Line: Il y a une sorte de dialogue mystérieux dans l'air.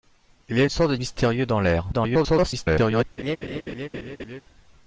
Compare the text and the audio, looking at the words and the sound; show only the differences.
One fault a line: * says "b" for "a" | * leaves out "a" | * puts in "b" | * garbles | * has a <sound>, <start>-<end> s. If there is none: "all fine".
* leaves out "dialogue"
* garbles
* has a laugh, 3.2-4.4 s